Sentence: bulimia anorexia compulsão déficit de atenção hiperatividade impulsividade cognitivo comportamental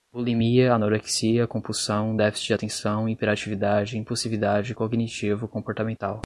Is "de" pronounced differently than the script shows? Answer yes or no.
no